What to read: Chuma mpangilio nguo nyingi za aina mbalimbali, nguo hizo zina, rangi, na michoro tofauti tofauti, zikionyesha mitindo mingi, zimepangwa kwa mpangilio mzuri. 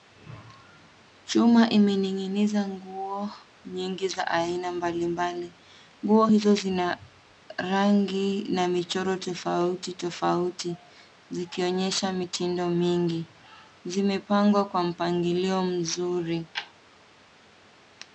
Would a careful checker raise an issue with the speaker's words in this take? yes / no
yes